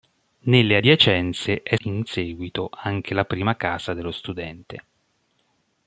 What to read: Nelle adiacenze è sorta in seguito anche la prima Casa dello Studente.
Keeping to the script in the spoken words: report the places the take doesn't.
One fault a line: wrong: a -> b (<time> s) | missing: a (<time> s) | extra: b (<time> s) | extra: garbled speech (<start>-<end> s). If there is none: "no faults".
missing: sorta (1.7 s)